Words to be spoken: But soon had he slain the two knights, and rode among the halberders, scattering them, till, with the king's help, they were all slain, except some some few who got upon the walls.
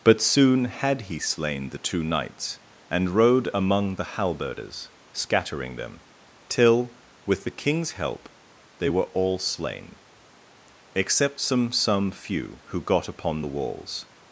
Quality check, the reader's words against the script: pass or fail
pass